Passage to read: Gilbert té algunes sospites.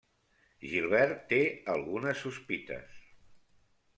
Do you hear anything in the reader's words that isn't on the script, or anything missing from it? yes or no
no